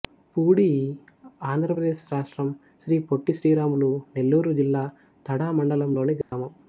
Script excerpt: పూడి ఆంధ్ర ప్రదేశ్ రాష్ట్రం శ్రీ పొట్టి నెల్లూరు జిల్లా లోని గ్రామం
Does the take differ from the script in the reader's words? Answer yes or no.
yes